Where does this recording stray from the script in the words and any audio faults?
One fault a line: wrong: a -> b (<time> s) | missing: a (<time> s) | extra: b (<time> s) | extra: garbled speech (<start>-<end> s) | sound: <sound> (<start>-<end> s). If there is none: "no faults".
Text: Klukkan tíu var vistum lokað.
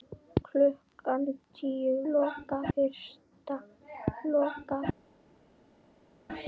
wrong: var -> lokað (2.1 s)